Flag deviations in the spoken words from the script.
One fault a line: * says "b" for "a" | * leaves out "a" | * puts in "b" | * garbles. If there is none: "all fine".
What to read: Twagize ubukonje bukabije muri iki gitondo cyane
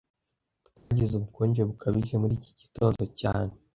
all fine